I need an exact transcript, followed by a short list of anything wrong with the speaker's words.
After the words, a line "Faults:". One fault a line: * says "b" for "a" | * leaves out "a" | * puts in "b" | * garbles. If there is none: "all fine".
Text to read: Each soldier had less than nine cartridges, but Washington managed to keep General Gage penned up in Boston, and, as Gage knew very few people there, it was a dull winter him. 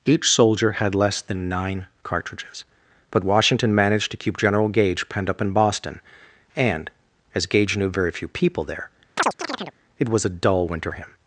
Each soldier had less than nine cartridges, but Washington managed to keep General Gage penned up in Boston, and, as Gage knew very few people there, it was a dull winter him.
Faults:
all fine